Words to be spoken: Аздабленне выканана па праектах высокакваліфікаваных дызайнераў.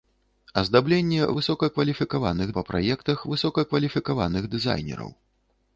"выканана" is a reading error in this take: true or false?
true